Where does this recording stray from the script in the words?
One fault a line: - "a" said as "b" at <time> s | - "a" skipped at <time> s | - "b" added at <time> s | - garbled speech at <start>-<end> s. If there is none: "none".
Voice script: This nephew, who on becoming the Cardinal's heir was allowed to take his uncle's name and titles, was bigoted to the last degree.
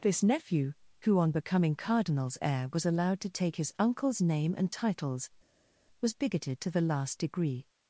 - "the" skipped at 1.8 s